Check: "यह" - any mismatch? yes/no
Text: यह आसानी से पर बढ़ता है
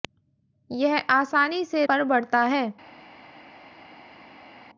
no